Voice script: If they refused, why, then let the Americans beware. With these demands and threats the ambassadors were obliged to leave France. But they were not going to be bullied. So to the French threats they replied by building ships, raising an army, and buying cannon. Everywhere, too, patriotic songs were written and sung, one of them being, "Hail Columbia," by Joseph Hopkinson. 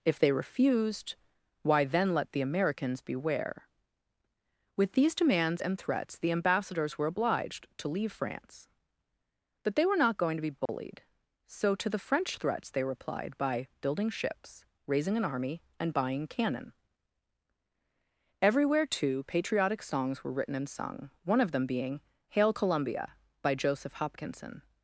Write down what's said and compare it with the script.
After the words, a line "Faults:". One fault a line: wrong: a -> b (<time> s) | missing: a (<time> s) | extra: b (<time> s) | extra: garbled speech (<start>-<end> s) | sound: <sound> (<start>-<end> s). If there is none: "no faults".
If they refused, why, then let the Americans beware. With these demands and threats the ambassadors were obliged to leave France. But they were not going to be bullied. So to the French threats they replied by building ships, raising an army, and buying cannon. Everywhere, too, patriotic songs were written and sung, one of them being, "Hail Columbia," by Joseph Hopkinson.
Faults:
sound: dropout (10.7-10.7 s)